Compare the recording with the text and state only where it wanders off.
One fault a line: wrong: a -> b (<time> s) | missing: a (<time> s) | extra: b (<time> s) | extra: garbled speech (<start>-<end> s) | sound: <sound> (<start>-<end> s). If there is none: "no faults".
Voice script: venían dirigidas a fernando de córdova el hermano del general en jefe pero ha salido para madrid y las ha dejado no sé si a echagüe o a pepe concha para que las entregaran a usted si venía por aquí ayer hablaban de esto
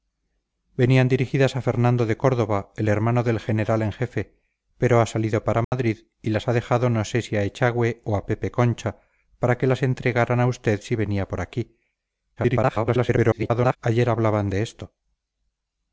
sound: dropout (5.6-5.7 s)
extra: garbled speech (12.4-13.8 s)